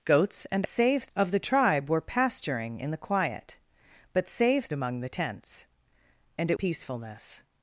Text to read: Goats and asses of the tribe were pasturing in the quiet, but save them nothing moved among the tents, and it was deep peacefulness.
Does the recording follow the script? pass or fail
fail